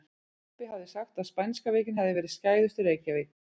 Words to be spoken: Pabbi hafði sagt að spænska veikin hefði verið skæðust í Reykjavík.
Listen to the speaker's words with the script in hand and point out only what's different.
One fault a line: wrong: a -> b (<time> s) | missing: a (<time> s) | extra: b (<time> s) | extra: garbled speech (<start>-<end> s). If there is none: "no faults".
no faults